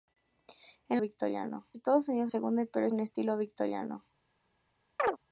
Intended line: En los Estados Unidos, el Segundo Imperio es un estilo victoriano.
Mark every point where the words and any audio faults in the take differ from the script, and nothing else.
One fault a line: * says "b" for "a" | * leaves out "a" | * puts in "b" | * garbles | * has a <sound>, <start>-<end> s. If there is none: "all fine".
* says "victoriano" for "los"
* leaves out "el"
* leaves out "es"
* has a chirp, 5.0-5.2 s